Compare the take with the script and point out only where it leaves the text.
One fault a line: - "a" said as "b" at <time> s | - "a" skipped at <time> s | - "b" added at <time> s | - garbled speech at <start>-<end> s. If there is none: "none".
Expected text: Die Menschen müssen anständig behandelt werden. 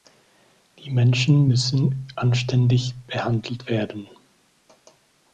none